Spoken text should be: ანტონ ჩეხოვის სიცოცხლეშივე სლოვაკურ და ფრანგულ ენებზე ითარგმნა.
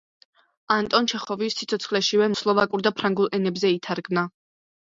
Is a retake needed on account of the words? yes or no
no